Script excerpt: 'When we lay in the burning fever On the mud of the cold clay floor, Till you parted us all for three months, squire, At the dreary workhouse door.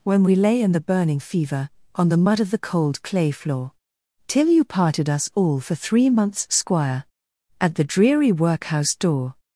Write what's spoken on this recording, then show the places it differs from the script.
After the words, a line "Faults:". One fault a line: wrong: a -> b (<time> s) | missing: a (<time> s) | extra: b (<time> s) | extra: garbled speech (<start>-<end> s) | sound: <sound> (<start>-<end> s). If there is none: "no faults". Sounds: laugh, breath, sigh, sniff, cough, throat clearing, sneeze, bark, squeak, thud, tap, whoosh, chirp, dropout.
'When we lay in the burning fever On the mud of the cold clay floor, Till you parted us all for three months, squire, At the dreary workhouse door.
Faults:
no faults